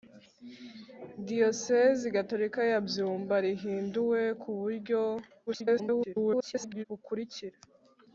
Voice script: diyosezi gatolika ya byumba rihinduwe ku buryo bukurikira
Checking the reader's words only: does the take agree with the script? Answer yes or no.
no